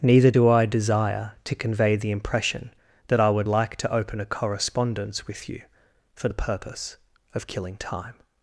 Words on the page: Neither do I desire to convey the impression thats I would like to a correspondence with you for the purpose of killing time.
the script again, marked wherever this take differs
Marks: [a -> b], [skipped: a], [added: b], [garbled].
Neither do I desire to convey the impression [thats -> that] I would like to [added: open] a correspondence with you for the purpose of killing time.